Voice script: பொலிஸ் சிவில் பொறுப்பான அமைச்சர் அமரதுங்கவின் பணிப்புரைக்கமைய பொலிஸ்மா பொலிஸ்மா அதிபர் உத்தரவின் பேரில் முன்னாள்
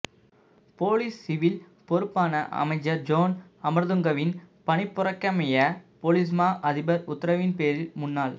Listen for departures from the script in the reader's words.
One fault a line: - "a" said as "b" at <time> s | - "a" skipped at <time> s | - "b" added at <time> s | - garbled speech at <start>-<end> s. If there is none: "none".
- "ஜோன்" added at 3.0 s
- "பொலிஸ்மா" skipped at 6.5 s